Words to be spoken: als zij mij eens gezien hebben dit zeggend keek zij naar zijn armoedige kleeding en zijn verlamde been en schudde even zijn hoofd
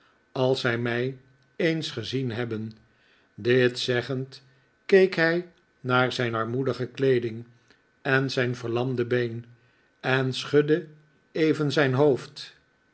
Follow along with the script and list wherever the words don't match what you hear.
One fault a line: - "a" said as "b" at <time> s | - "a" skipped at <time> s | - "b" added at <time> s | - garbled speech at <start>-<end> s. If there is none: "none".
- "zij" said as "hij" at 5.1 s